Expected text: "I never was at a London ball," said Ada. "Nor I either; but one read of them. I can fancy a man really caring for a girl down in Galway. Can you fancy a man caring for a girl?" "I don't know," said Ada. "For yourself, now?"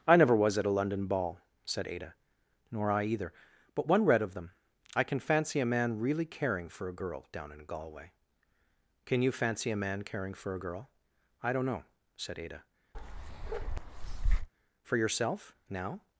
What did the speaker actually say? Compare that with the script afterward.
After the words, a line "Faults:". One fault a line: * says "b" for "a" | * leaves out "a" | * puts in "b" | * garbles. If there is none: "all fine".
"I never was at a London ball," said Ada. "Nor I either; but one read of them. I can fancy a man really caring for a girl down in Galway. Can you fancy a man caring for a girl?" "I don't know," said Ada. "For yourself, now?"
Faults:
all fine